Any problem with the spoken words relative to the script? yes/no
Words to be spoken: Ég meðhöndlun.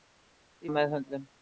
no